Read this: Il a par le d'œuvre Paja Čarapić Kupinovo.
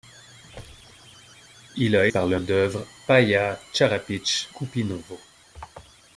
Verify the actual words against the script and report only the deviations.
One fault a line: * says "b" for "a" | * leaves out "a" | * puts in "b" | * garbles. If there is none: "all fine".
all fine